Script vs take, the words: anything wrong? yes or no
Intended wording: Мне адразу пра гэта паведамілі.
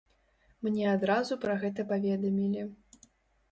no